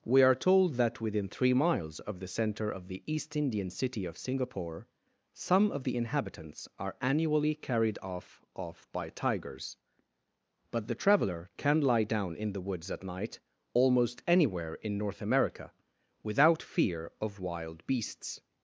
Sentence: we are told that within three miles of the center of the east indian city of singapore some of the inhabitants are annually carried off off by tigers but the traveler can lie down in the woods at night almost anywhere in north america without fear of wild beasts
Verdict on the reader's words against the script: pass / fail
pass